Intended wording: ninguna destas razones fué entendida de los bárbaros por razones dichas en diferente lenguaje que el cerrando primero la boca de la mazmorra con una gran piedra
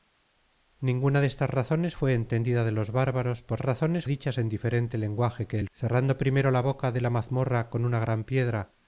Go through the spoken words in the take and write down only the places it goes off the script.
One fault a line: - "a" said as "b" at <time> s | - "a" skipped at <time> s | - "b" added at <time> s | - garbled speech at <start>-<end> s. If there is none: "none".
none